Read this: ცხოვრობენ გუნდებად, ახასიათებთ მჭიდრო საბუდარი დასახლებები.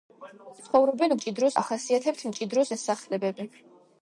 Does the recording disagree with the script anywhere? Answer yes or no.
yes